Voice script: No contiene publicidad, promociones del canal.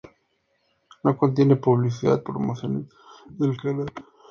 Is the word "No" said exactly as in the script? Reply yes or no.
yes